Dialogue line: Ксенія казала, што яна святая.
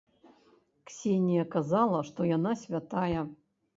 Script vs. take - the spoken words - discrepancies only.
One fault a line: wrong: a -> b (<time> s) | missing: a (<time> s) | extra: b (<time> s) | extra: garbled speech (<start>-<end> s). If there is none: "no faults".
no faults